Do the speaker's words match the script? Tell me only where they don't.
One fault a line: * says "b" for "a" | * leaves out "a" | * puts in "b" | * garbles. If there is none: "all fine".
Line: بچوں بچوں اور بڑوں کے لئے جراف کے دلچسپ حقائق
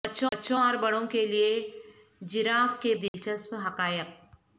all fine